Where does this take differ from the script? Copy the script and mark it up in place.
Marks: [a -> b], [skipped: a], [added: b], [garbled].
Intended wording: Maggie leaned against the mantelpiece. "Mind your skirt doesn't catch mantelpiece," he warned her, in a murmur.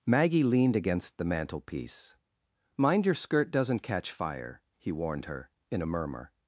Maggie leaned against the mantelpiece. "Mind your skirt doesn't catch [mantelpiece," -> fire] he warned her, in a murmur.